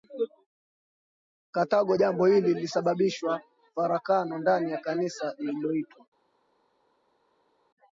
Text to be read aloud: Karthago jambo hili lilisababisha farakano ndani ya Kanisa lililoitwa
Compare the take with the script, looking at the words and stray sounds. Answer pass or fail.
pass